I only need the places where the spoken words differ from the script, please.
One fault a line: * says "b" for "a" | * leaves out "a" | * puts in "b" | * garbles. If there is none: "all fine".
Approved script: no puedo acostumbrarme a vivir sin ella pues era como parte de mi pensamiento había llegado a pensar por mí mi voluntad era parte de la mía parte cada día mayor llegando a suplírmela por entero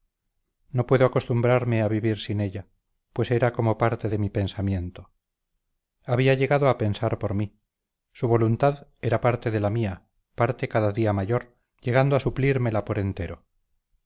* says "su" for "mi"